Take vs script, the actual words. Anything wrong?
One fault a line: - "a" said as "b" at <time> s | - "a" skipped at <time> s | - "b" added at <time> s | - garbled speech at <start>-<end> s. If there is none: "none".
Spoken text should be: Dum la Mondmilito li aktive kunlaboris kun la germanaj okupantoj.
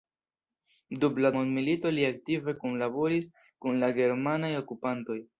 none